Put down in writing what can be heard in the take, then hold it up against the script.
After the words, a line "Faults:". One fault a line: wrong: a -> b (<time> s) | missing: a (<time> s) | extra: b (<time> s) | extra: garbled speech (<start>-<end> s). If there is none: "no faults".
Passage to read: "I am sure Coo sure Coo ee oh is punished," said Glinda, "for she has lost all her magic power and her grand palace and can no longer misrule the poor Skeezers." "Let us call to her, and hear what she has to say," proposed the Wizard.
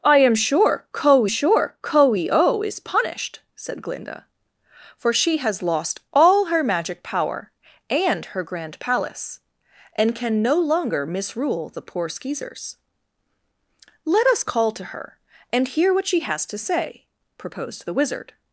"I am sure Coo sure Coo ee oh is punished," said Glinda, "for she has lost all her magic power and her grand palace and can no longer misrule the poor Skeezers." "Let us call to her, and hear what she has to say," proposed the Wizard.
Faults:
no faults